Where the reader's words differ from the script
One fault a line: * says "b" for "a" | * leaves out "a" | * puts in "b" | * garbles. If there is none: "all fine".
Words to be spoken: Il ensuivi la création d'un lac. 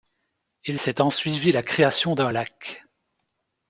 * puts in "s'est"